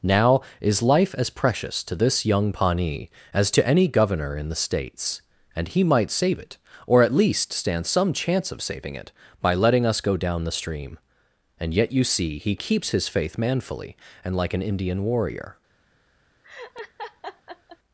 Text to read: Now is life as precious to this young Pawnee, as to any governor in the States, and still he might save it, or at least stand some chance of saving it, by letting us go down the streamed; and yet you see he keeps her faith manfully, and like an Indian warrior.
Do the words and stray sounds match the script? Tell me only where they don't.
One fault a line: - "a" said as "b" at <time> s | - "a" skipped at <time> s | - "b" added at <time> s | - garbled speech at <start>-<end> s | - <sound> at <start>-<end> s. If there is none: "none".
- "still" skipped at 5.7 s
- "streamed" said as "stream" at 10.5 s
- "her" said as "his" at 12.9 s
- laugh at 16.4-17.8 s